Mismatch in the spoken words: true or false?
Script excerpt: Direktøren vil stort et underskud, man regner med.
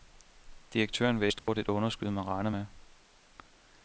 false